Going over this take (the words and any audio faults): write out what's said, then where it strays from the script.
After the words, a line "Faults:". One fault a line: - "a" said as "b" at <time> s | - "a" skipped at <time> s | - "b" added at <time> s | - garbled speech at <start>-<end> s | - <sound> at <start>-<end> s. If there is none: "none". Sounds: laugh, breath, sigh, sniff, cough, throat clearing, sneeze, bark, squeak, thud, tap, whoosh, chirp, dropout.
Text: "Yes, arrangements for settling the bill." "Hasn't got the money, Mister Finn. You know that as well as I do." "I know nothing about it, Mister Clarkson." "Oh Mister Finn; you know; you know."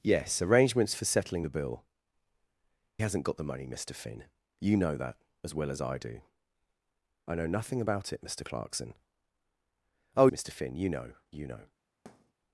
"Yes, arrangements for settling the bill." "Hasn't got the money, Mister Finn. You know that as well as I do." "I know nothing about it, Mister Clarkson." "Oh Mister Finn; you know; you know."
Faults:
- thud at 12.1-12.3 s